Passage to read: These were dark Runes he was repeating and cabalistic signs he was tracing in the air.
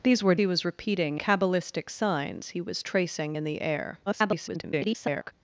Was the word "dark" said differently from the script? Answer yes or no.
yes